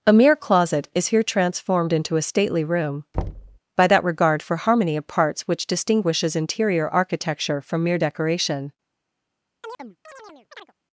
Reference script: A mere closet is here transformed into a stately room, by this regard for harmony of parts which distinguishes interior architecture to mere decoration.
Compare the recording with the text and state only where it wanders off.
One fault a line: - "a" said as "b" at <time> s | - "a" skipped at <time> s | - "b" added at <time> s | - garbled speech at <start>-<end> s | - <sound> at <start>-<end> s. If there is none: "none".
- thud at 3.1-3.6 s
- "this" said as "that" at 3.9 s
- "to" said as "from" at 7.6 s
- chirp at 9.6-10.7 s